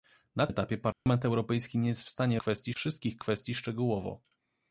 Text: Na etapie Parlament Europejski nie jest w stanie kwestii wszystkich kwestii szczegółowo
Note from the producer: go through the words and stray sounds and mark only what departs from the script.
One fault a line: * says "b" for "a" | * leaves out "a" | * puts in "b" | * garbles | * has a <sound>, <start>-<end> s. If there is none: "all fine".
* has a dropout, 0.9-1.1 s